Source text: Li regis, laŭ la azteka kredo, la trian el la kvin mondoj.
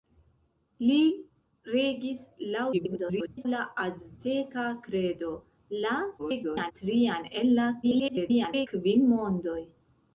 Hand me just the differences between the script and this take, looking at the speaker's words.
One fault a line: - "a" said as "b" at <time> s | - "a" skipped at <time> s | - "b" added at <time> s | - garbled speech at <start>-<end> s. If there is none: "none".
- garbled speech at 2.7-3.5 s
- garbled speech at 6.2-6.7 s
- garbled speech at 7.8-8.7 s